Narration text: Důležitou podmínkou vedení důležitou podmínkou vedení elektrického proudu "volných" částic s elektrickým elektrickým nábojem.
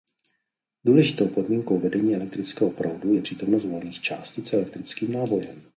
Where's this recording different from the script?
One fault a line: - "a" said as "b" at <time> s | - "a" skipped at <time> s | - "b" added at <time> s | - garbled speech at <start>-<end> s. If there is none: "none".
- "důležitou podmínkou vedení elektrického proudu" said as "elektrického proudu je přítomnost" at 2.1 s
- "elektrickým" skipped at 5.1 s